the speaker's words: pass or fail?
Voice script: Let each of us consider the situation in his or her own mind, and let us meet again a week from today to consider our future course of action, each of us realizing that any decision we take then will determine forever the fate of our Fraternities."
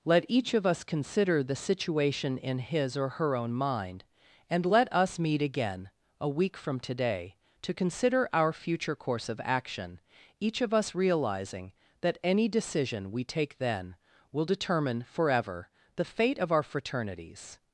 pass